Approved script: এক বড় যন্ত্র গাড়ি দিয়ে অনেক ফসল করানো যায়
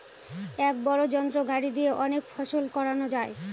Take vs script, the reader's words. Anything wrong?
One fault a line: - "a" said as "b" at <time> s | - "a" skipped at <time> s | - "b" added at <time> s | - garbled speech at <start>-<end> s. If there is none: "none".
none